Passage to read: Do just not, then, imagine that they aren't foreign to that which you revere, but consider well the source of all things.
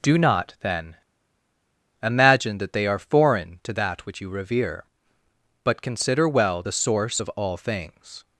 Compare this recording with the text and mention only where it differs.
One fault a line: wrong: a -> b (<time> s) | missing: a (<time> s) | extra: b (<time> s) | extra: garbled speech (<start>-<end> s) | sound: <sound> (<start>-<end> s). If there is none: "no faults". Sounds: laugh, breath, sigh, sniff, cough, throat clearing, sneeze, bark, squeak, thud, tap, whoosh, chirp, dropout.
missing: just (0.2 s)
wrong: aren't -> are (2.9 s)